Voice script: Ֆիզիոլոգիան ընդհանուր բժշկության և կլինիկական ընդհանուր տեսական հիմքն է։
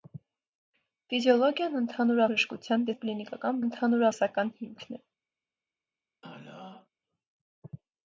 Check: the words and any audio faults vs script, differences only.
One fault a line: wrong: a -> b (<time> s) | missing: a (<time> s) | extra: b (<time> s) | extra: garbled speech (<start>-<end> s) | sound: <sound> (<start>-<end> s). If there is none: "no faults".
sound: throat clearing (6.2-6.9 s)